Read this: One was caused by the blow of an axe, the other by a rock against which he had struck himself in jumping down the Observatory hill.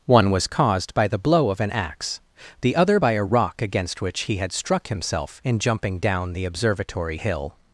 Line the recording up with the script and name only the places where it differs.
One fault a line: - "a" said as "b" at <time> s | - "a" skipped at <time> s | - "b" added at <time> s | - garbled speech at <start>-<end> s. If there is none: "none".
none